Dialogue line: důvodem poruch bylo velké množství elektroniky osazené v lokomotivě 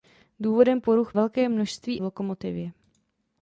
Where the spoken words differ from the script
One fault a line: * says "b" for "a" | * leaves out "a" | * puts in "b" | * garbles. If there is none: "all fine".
* leaves out "bylo"
* leaves out "elektroniky osazené"